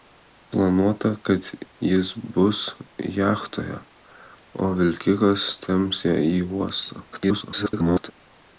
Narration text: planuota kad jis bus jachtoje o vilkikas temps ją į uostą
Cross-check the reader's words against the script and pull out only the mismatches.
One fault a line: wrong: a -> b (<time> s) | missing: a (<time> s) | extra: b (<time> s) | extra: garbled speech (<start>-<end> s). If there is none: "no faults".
extra: garbled speech (7.1-8.1 s)